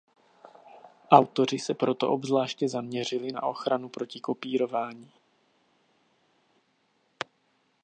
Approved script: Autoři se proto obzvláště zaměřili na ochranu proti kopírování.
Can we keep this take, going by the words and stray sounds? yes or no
yes